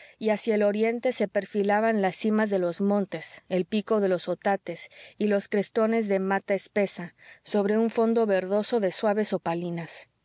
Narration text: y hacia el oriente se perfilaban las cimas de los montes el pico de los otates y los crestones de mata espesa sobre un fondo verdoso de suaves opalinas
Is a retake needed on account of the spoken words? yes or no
no